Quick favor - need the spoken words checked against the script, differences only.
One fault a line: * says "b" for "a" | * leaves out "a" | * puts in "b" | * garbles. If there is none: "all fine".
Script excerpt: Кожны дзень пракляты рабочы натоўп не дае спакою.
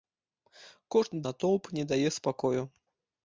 * leaves out "дзень пракляты рабочы"